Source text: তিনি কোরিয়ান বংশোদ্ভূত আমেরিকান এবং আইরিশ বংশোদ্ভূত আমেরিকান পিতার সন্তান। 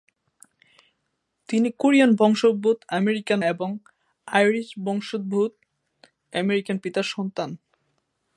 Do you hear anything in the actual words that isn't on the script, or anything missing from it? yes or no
no